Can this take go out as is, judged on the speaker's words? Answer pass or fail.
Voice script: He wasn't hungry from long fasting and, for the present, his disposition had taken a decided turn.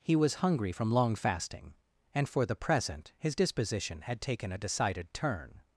fail